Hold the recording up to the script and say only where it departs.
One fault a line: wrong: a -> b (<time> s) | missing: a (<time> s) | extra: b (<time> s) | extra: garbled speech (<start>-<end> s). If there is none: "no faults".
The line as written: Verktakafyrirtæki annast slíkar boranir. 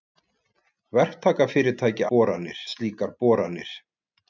wrong: annast -> boranir (2.1 s)